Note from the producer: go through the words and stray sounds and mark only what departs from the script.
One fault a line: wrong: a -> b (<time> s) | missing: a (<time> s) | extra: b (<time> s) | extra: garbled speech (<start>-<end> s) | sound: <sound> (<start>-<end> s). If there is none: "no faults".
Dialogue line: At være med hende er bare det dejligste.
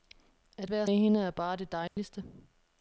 sound: dropout (1.9-2.0 s)